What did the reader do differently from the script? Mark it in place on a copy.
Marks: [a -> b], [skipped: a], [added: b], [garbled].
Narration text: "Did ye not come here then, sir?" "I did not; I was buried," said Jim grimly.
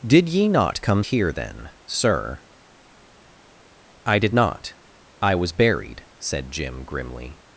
"Did ye not come here then, sir?" "I did not; I was buried," said Jim grimly.